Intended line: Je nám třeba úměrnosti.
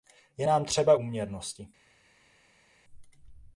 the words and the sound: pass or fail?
pass